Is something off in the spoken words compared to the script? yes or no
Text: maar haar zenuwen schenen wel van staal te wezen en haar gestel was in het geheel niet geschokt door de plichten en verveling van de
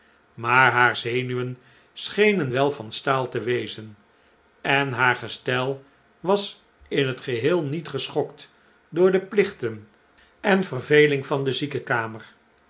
no